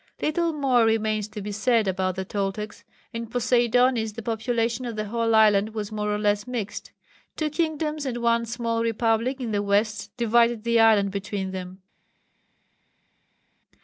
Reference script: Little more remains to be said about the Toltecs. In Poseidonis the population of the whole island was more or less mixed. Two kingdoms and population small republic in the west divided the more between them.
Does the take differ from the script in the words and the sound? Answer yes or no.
yes